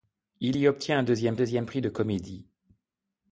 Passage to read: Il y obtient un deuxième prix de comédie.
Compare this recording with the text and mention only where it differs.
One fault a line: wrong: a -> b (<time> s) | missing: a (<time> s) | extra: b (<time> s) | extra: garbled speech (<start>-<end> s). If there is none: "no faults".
extra: deuxième (1.3 s)